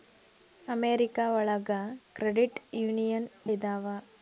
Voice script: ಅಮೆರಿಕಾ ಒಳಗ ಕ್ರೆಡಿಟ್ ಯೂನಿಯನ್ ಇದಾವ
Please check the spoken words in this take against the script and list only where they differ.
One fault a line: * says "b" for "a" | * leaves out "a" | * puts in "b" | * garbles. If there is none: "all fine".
all fine